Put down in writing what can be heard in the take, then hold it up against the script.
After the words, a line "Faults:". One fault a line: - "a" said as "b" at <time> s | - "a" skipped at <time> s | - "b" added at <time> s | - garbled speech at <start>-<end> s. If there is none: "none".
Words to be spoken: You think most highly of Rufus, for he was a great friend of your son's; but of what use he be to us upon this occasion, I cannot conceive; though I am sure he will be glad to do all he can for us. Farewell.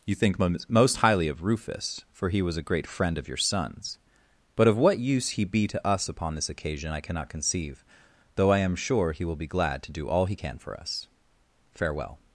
You think most highly of Rufus, for he was a great friend of your son's; but of what use he be to us upon this occasion, I cannot conceive; though I am sure he will be glad to do all he can for us. Farewell.
Faults:
none